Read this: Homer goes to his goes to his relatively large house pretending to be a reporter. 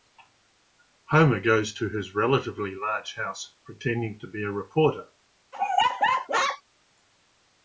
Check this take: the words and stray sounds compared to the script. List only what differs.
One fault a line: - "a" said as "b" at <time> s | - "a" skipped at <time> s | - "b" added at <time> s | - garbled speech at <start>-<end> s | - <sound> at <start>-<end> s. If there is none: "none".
- "goes to his" skipped at 2.1 s
- laugh at 5.5-6.6 s